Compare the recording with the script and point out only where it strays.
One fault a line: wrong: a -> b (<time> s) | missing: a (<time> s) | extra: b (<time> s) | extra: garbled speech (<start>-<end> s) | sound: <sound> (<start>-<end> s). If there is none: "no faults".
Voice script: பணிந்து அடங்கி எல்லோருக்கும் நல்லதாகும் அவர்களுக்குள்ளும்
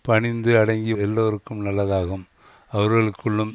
no faults